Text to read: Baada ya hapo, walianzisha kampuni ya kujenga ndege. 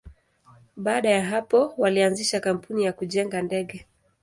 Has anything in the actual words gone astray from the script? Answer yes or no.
no